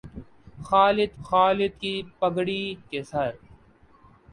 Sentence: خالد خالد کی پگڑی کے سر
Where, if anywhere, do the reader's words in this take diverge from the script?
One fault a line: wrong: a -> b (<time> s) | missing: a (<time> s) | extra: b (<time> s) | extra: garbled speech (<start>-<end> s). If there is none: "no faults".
no faults